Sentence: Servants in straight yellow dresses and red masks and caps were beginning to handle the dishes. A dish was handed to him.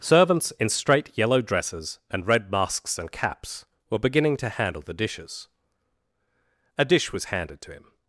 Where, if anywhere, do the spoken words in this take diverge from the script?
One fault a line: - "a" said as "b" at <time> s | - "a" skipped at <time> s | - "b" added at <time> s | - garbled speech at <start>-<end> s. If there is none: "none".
none